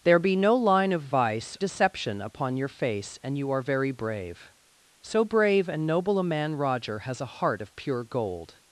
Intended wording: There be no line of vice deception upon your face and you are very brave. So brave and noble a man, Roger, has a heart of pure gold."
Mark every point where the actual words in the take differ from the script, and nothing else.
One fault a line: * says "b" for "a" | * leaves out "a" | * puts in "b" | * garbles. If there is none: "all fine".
all fine